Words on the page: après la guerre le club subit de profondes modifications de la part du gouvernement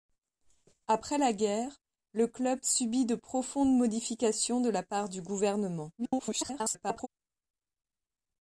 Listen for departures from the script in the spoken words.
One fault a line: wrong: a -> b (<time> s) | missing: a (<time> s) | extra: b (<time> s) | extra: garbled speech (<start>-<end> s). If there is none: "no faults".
extra: garbled speech (6.0-7.1 s)